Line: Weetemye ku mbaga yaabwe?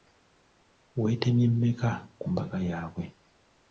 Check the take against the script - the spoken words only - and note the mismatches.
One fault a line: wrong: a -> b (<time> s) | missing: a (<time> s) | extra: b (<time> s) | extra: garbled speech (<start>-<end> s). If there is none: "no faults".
extra: mmeka (1.5 s)